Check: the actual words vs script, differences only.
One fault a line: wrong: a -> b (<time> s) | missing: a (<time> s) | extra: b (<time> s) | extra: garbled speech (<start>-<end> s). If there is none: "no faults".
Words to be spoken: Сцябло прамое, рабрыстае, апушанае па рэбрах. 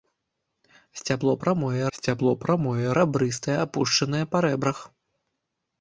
extra: сцябло прамое (2.0 s)